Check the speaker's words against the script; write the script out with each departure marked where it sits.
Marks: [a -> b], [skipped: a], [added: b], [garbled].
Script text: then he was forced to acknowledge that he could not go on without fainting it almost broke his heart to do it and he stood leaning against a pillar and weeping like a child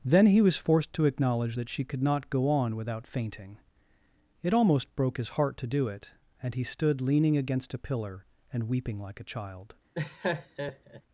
then he was forced to acknowledge that [he -> she] could not go on without fainting it almost broke his heart to do it and he stood leaning against a pillar and weeping like a child